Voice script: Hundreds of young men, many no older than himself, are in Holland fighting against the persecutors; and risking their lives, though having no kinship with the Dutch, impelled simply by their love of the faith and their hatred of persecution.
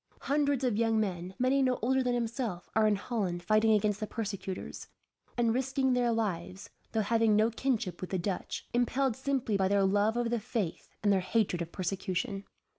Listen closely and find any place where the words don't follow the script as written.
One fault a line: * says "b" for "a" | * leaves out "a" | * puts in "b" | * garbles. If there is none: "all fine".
all fine